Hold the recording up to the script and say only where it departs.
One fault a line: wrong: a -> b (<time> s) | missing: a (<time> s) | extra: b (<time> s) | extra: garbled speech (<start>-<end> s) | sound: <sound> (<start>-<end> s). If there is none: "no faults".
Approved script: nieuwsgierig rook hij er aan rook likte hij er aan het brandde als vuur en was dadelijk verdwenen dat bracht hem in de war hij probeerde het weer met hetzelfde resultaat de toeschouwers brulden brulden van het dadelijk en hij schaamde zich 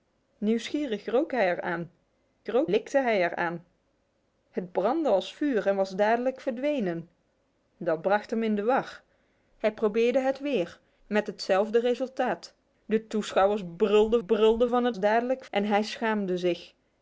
no faults